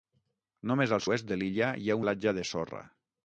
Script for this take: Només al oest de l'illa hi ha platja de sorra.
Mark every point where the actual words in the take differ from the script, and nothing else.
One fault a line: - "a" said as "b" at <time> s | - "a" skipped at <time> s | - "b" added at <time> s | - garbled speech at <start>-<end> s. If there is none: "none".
none